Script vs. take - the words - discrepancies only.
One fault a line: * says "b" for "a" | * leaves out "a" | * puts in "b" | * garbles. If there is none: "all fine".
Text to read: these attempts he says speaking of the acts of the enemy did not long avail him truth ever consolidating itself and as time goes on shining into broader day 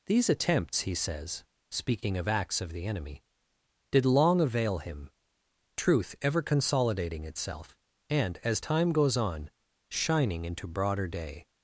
* leaves out "the"
* leaves out "not"